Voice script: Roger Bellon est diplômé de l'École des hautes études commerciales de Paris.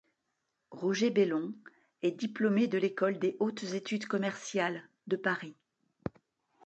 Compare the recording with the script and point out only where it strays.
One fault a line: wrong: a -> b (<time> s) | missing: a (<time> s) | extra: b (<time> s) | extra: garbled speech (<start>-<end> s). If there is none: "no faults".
no faults